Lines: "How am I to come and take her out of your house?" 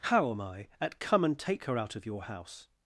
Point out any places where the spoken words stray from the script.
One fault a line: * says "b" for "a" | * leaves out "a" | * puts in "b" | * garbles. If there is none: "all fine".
* says "at" for "to"